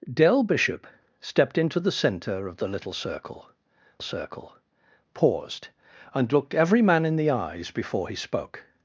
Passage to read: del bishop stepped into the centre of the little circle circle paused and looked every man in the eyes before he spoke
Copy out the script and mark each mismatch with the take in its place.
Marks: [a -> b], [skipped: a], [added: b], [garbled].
del bishop stepped into the centre of the little circle circle paused and looked every man in the eyes before he spoke